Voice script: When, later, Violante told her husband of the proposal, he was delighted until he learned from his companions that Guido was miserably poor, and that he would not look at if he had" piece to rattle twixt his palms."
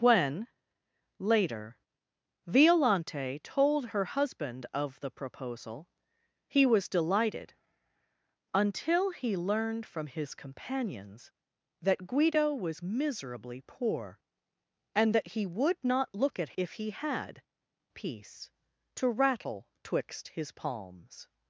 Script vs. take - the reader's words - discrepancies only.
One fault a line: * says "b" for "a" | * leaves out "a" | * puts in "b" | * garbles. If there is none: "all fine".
all fine